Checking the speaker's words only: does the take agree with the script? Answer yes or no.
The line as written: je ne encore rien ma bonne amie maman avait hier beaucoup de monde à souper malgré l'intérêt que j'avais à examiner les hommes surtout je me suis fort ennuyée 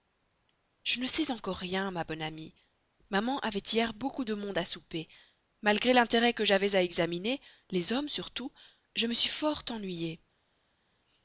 no